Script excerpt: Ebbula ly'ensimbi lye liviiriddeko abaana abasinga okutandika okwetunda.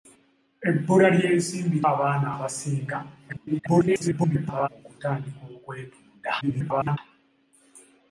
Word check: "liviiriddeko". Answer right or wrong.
wrong